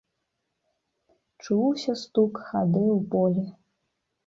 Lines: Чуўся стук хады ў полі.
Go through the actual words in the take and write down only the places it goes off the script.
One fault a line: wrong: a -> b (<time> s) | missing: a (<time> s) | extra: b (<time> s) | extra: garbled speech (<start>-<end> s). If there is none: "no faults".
no faults